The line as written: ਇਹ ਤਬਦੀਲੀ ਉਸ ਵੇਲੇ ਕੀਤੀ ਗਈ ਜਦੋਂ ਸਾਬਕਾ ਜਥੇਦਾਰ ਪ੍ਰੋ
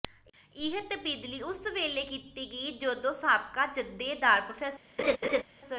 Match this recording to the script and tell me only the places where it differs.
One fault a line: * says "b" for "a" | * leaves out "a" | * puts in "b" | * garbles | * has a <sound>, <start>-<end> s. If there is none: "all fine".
* has a laugh, 5.0-5.4 s